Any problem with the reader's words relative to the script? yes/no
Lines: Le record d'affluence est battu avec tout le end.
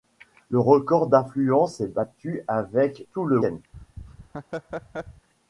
no